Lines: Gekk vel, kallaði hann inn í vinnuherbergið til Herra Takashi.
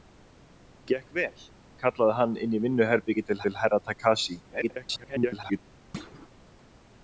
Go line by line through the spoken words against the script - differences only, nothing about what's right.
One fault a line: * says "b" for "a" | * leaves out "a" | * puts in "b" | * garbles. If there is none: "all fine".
* puts in "til"
* garbles